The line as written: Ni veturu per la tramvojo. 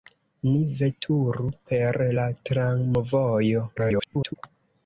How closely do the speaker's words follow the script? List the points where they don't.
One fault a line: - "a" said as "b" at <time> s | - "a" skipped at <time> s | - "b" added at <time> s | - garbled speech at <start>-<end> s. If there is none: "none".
- garbled speech at 3.8-4.3 s